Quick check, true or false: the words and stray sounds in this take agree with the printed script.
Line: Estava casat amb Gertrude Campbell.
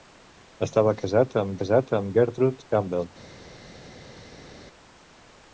false